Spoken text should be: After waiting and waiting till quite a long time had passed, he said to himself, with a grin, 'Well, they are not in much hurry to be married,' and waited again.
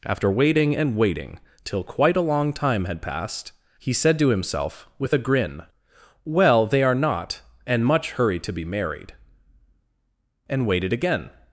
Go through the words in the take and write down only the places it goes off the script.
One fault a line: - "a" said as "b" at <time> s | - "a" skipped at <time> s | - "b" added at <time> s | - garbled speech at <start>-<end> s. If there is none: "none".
- "in" said as "and" at 7.6 s